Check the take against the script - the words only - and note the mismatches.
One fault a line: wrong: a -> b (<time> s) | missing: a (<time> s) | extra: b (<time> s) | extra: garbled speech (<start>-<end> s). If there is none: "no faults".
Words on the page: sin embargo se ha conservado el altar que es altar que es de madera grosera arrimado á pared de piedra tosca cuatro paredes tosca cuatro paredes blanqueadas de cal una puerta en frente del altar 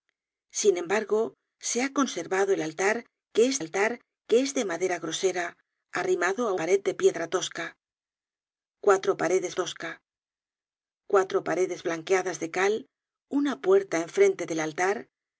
no faults